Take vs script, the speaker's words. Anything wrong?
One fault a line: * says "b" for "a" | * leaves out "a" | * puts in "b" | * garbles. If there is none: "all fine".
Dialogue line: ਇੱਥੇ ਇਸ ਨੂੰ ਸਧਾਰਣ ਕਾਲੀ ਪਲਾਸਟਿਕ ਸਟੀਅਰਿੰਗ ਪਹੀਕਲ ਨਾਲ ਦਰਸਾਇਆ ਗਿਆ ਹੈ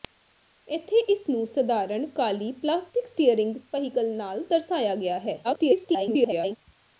* garbles